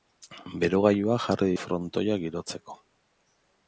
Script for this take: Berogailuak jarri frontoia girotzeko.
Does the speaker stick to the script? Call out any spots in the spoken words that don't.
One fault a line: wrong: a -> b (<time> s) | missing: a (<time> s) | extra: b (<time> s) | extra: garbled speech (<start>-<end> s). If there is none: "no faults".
no faults